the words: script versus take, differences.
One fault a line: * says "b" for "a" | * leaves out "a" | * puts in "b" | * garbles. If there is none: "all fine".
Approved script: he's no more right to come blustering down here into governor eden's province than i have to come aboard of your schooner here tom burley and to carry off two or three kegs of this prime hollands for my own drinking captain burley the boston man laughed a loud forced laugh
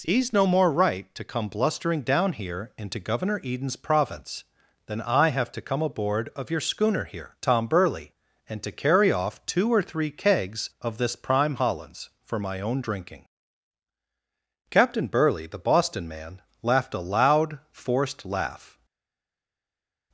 all fine